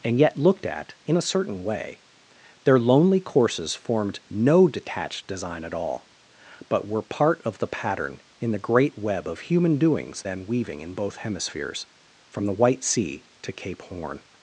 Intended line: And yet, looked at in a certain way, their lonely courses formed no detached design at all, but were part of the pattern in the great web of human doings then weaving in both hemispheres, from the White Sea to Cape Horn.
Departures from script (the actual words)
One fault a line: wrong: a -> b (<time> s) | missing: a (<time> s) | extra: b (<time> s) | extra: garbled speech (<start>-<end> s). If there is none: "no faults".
no faults